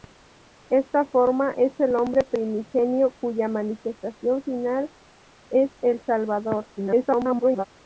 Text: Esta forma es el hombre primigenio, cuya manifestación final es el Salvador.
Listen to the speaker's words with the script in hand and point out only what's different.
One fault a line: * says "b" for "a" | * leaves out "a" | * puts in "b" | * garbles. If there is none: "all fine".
* garbles